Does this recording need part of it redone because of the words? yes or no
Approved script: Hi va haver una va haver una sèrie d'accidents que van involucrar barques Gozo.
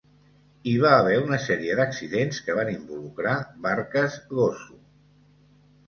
yes